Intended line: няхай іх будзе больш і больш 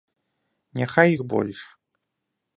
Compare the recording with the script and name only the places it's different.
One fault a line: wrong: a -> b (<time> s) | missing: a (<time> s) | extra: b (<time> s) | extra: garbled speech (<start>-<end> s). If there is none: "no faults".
missing: будзе больш і (1.2 s)